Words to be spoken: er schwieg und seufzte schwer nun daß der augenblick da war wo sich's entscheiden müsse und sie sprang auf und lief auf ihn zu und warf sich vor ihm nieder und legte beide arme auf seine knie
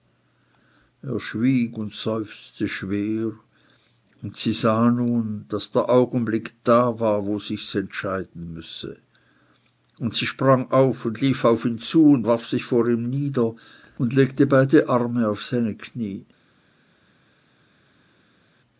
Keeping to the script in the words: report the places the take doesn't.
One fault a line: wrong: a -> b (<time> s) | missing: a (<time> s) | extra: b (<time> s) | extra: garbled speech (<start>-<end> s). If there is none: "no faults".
extra: und sie sah (4.2 s)